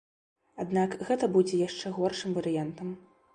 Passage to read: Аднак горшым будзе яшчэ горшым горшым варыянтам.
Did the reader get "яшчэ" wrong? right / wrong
right